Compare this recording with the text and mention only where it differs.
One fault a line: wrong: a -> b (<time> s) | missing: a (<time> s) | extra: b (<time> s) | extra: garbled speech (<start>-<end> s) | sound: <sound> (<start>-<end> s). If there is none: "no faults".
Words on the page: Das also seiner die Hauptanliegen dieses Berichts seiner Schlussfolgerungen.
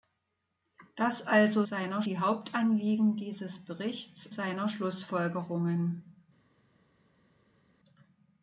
no faults